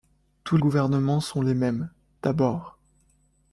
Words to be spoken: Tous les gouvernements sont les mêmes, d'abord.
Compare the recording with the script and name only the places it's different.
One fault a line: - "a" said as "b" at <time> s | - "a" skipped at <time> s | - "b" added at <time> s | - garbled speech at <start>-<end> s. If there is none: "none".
- "les" skipped at 0.6 s